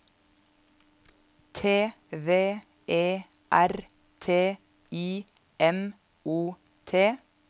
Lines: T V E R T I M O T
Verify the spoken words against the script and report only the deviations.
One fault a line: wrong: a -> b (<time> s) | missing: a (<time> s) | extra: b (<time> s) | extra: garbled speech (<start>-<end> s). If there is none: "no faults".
no faults